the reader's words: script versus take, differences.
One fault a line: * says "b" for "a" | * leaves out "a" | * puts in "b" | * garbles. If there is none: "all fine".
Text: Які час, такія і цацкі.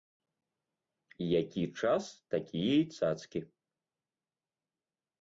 all fine